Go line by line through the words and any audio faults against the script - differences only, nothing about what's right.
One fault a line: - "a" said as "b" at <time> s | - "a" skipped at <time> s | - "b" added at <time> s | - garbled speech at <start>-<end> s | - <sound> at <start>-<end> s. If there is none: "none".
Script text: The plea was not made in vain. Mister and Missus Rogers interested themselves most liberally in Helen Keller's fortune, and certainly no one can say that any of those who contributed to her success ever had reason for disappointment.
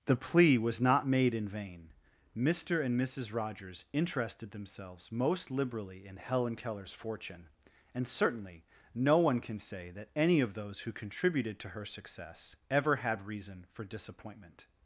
none